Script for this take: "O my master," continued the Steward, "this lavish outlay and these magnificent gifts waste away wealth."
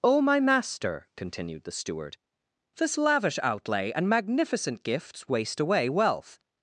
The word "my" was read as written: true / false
true